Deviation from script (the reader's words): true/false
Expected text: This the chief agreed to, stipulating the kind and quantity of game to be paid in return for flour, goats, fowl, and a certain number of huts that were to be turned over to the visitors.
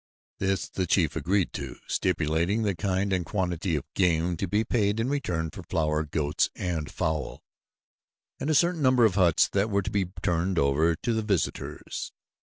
true